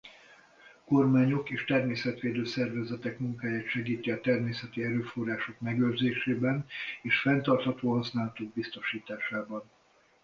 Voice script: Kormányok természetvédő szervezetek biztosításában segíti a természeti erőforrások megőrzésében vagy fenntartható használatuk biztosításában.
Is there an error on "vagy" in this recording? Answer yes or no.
yes